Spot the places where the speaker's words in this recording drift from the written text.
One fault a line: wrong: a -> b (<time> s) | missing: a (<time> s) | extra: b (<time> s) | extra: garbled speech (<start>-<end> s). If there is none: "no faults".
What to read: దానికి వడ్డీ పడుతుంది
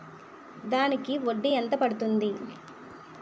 extra: ఎంత (1.5 s)